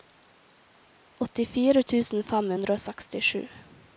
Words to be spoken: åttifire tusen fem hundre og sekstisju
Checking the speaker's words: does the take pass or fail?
pass